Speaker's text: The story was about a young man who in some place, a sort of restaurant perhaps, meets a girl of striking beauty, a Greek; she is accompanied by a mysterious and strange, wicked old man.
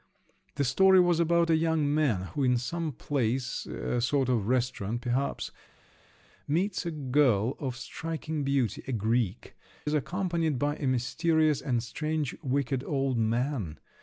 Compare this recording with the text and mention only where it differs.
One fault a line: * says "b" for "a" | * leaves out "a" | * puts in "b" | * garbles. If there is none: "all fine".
* leaves out "she"